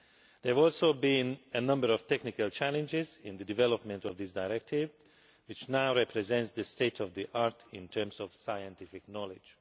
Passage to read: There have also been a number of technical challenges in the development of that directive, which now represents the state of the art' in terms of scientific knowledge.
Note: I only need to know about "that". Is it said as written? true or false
false